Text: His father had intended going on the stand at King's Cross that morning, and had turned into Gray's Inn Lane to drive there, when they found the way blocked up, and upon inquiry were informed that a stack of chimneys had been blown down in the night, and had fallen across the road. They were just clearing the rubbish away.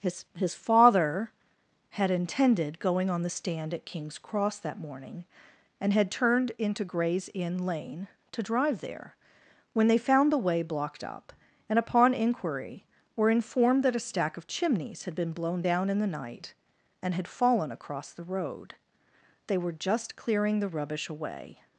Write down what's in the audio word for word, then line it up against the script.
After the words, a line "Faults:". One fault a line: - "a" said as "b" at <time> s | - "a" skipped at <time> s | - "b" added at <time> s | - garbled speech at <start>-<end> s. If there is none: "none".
His his father had intended going on the stand at King's Cross that morning, and had turned into Gray's Inn Lane to drive there, when they found the way blocked up, and upon inquiry were informed that a stack of chimneys had been blown down in the night, and had fallen across the road. They were just clearing the rubbish away.
Faults:
- "his" added at 0.3 s